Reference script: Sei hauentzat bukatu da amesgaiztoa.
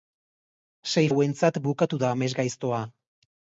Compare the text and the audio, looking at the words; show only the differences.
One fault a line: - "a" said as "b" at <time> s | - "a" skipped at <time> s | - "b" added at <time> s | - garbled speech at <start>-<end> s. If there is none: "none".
none